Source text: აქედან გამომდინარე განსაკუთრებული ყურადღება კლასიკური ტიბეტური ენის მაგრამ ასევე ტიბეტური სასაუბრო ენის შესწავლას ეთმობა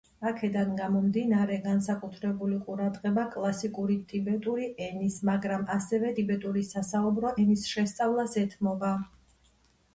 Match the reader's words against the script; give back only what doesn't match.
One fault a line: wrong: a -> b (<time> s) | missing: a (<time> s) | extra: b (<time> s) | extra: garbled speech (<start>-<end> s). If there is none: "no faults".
no faults